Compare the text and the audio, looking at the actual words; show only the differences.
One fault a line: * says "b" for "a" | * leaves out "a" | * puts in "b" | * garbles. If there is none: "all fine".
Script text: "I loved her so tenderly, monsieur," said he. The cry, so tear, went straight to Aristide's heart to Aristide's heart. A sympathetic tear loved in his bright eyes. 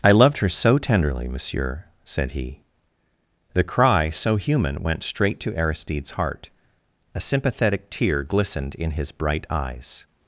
* says "human" for "tear"
* leaves out "to Aristide's heart"
* says "glistened" for "loved"